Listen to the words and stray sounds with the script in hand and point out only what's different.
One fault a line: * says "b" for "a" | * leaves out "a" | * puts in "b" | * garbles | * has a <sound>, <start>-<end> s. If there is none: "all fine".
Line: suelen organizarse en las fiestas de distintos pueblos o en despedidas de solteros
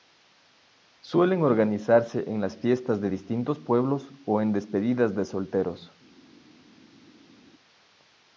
all fine